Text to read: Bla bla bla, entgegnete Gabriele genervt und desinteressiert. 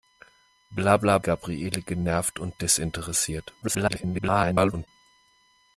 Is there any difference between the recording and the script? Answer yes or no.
yes